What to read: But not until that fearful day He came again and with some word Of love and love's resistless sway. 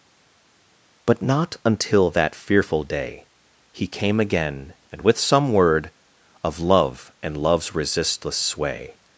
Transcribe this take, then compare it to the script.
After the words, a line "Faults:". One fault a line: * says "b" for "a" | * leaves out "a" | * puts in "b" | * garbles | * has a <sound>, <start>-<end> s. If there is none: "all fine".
But not until that fearful day He came again and with some word Of love and love's resistless sway.
Faults:
all fine